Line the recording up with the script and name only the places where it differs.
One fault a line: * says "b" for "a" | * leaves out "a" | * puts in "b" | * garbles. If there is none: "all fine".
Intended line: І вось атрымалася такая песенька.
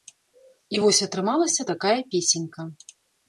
all fine